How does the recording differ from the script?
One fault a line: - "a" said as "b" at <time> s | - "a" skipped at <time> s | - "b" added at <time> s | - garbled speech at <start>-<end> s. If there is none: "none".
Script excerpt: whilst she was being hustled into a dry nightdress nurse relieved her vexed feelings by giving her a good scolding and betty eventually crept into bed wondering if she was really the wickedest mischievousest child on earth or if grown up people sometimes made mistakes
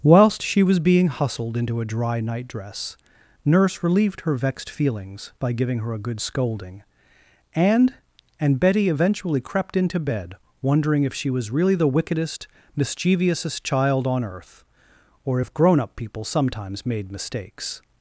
- "and" added at 8.4 s